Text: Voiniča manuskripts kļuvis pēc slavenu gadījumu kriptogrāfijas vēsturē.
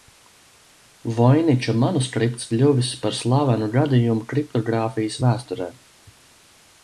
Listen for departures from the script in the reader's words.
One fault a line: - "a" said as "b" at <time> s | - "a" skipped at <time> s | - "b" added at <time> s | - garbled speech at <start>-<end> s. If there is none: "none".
- "pēc" said as "par" at 3.0 s